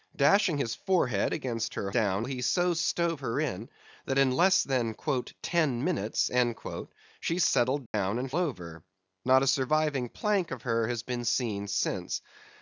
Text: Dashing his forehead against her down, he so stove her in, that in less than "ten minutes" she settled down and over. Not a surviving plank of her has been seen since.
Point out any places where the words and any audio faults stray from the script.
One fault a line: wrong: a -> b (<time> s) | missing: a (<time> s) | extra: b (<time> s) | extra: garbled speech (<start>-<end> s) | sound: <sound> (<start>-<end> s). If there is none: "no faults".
sound: dropout (7.9-7.9 s)